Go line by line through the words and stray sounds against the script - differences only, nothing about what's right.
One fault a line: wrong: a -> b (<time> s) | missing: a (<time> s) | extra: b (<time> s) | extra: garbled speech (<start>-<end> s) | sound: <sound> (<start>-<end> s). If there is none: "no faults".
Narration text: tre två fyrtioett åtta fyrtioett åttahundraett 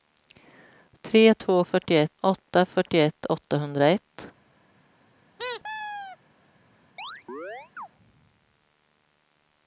sound: squeak (5.4-6.2 s)
sound: chirp (7.0-7.9 s)